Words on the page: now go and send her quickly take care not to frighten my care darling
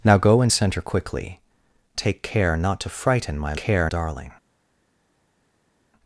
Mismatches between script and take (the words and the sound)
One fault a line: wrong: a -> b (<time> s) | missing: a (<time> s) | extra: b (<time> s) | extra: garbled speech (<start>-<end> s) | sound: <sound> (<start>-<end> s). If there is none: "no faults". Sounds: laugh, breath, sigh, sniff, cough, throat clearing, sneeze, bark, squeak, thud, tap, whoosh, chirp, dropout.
no faults